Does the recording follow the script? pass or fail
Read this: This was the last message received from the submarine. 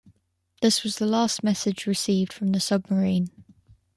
pass